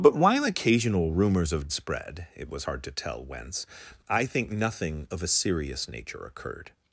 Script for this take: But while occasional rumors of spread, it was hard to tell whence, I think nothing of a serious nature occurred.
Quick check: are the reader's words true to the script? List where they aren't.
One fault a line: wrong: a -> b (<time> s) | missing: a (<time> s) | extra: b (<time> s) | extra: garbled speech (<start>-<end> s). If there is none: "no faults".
no faults